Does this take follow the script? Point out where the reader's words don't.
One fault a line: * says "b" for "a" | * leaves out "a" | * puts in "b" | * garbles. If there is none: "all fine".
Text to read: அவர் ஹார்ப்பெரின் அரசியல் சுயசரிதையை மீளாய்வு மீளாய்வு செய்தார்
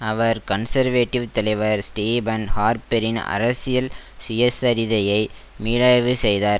* puts in "கன்சர்வேட்டிவ் தலைவர் ஸ்டீபன்"
* leaves out "மீளாய்வு"